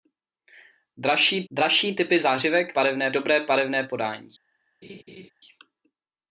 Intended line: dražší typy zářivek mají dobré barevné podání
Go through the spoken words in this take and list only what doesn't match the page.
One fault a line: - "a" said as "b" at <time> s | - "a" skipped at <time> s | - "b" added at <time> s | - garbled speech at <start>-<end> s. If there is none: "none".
- "dražší" added at 1.5 s
- "mají" said as "barevné" at 2.7 s